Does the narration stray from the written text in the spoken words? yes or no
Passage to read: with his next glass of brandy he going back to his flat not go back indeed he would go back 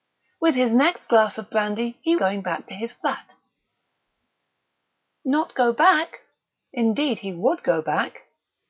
no